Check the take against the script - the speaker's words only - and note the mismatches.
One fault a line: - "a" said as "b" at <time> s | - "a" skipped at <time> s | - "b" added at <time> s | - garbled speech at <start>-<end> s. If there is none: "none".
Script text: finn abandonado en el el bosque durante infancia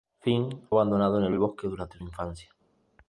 none